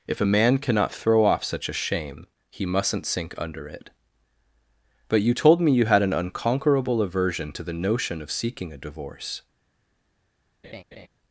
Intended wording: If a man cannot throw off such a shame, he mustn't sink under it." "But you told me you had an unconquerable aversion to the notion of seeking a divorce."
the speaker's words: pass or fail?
pass